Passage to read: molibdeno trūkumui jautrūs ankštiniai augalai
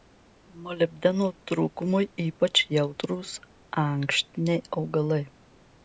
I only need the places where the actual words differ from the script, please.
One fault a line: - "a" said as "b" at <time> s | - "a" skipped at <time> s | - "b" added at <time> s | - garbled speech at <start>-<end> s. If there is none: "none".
- "ypač" added at 2.2 s